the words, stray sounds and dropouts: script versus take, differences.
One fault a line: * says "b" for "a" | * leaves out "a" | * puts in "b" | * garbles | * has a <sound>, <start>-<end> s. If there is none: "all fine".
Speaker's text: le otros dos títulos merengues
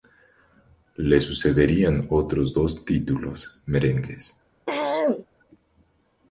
* puts in "sucederían"
* has a throat clearing, 4.7-5.3 s